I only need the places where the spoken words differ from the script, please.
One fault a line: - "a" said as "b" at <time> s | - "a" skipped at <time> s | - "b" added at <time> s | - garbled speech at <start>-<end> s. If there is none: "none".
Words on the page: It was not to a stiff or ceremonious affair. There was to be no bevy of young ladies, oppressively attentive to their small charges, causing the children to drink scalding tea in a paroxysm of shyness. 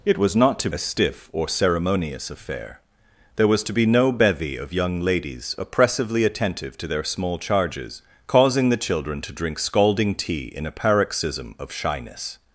none